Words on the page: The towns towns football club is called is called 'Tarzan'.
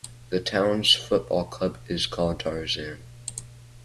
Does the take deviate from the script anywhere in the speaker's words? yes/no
yes